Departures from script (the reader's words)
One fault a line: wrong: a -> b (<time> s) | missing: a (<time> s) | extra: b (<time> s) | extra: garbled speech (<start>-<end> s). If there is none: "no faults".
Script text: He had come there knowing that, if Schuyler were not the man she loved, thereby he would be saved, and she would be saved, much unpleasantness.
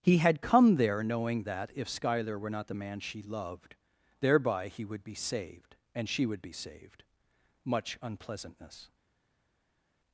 no faults